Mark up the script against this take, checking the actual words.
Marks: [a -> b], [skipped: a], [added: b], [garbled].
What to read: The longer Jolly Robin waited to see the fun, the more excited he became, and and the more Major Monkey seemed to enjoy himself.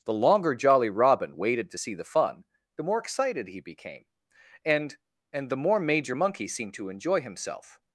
The longer Jolly Robin waited to see the fun, the more excited he became, and and the more Major Monkey seemed to enjoy himself.